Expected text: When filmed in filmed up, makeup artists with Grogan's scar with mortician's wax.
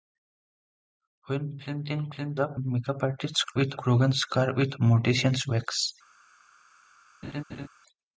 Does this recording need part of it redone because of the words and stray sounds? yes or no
yes